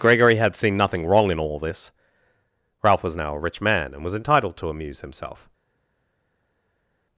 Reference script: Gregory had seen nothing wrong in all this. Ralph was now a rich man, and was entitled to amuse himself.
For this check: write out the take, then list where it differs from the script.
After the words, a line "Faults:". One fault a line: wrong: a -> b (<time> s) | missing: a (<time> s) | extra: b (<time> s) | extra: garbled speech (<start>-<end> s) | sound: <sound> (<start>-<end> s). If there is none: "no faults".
Gregory had seen nothing wrong in all this. Ralph was now a rich man, and was entitled to amuse himself.
Faults:
no faults